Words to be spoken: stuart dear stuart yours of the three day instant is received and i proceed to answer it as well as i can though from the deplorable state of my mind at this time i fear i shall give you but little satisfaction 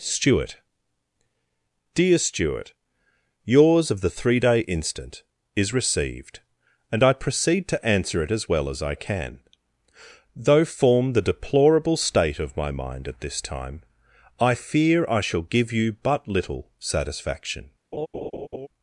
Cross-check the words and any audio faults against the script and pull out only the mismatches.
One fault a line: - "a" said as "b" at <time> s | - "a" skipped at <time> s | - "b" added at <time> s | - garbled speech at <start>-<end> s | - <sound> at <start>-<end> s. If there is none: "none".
- "from" said as "form" at 10.7 s
- laugh at 17.9-18.7 s